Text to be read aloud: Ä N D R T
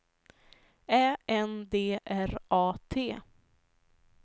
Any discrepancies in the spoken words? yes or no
yes